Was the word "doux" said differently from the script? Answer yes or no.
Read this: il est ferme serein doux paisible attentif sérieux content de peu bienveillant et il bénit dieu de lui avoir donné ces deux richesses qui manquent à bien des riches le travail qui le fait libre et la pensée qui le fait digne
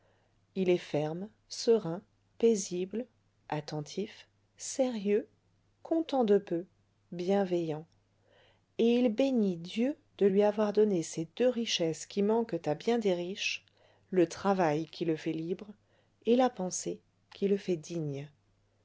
yes